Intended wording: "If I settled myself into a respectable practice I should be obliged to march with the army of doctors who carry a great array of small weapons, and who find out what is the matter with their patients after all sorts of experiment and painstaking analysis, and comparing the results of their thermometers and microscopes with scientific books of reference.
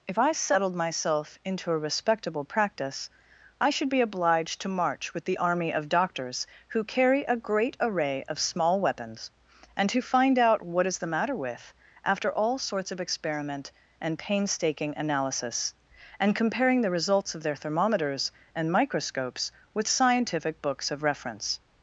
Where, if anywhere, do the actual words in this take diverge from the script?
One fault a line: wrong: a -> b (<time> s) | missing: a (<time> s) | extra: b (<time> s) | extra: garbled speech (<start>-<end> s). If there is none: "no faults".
missing: their patients (11.7 s)